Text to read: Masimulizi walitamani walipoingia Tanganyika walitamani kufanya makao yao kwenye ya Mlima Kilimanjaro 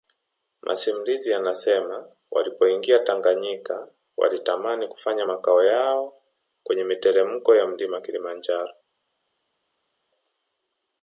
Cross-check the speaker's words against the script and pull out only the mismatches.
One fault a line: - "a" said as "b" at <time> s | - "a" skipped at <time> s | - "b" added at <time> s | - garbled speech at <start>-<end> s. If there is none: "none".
- "walitamani" said as "yanasema" at 1.3 s
- "miteremko" added at 6.8 s